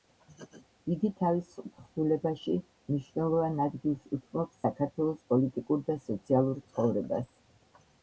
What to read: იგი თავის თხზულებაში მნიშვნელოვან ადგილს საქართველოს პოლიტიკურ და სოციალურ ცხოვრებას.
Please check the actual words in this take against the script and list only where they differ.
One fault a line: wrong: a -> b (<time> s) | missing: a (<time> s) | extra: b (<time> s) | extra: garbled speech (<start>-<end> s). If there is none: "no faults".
extra: უთმობს (4.2 s)